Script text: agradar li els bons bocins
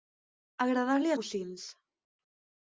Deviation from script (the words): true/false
true